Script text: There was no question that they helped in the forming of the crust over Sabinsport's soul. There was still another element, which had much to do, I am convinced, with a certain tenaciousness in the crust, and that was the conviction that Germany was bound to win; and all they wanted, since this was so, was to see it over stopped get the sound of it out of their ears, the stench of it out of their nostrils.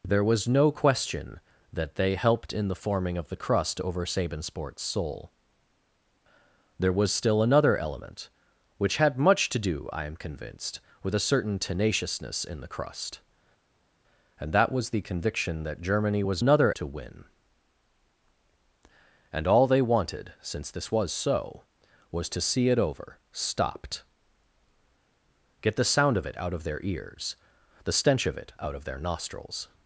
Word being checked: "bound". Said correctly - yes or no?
no